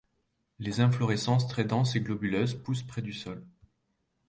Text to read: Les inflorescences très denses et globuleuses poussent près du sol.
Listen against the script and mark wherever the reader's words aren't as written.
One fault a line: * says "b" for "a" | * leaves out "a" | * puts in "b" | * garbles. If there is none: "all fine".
all fine